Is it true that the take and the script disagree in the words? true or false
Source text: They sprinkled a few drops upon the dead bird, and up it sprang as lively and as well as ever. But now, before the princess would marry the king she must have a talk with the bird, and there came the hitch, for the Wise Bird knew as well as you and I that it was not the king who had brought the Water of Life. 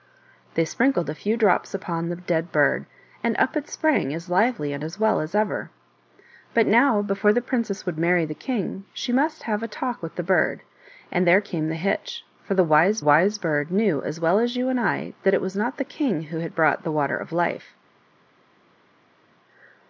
true